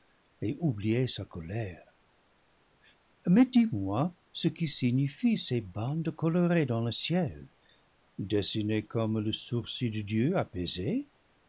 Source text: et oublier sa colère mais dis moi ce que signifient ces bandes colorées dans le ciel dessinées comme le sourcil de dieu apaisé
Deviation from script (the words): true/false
false